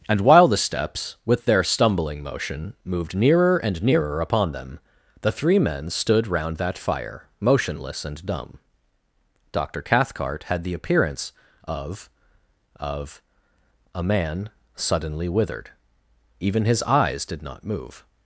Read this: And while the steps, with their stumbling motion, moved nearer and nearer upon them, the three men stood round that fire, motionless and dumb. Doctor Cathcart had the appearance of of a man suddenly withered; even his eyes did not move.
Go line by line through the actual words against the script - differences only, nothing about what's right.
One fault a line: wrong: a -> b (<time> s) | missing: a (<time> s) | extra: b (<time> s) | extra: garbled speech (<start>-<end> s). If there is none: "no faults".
no faults